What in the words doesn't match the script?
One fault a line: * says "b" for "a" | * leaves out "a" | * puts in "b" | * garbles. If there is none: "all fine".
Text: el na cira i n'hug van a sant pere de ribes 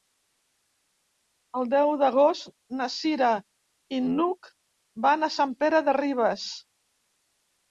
* puts in "deu d'agost"